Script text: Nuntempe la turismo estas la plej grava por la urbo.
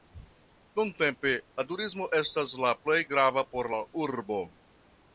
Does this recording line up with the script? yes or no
yes